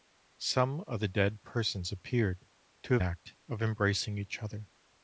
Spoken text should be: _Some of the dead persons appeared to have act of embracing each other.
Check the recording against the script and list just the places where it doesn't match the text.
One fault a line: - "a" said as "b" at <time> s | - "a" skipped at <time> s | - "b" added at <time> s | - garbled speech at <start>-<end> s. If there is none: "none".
none